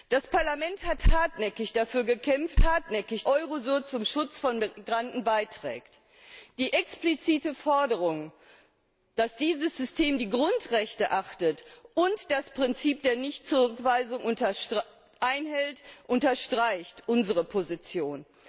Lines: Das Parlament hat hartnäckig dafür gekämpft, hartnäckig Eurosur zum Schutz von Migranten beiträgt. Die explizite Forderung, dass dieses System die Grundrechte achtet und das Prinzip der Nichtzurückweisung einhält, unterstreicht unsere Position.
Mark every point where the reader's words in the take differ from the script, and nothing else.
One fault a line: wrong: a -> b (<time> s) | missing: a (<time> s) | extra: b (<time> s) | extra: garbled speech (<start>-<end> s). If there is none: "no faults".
no faults